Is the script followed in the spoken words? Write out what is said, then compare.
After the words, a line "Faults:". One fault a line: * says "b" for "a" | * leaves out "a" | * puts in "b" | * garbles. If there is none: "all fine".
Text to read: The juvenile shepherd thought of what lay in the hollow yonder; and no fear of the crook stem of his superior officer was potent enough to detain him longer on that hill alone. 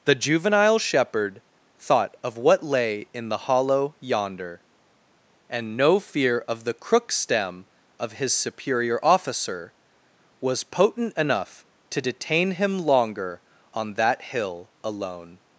The juvenile shepherd thought of what lay in the hollow yonder; and no fear of the crook stem of his superior officer was potent enough to detain him longer on that hill alone.
Faults:
all fine